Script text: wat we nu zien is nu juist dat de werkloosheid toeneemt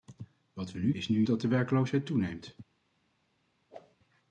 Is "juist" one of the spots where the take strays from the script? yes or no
yes